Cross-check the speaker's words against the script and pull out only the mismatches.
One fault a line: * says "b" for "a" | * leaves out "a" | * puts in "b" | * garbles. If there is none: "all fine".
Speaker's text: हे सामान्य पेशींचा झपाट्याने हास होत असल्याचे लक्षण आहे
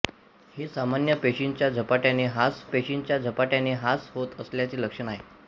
* puts in "पेशींचा झपाट्याने हास"